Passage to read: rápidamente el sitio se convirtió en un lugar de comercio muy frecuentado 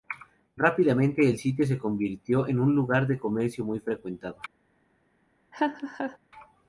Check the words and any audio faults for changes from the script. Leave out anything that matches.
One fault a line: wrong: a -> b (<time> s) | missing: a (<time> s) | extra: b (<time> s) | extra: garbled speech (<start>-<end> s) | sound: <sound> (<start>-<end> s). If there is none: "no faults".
sound: laugh (5.5-6.2 s)